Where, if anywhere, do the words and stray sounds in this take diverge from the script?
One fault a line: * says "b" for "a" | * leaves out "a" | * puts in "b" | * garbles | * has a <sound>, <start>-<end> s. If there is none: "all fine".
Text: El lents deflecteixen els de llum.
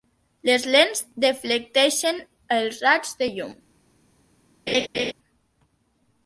* says "Les" for "El"
* puts in "raigs"
* has a laugh, 4.7-5.1 s